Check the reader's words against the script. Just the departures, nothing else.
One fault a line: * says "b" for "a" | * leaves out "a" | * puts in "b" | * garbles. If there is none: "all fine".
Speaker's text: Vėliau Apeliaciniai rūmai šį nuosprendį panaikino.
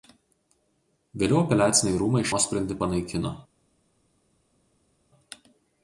* leaves out "šį"